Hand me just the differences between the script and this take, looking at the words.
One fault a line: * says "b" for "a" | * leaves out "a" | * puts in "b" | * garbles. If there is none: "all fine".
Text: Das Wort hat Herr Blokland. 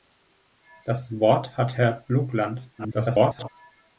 * garbles